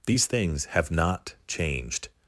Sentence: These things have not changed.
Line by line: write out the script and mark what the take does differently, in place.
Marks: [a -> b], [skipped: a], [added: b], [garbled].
These things have not changed.